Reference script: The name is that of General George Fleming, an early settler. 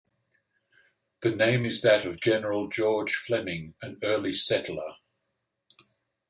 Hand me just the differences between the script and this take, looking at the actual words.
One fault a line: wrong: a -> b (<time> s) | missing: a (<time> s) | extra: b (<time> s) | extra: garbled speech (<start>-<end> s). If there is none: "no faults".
no faults